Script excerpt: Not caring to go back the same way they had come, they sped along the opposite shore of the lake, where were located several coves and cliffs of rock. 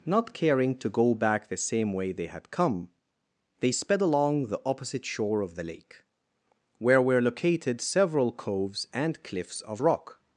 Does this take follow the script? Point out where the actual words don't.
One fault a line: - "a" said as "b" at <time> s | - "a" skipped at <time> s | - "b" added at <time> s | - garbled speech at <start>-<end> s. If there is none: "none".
none